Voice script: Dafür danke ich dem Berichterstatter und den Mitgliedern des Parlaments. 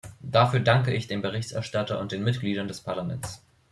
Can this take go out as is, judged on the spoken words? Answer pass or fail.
pass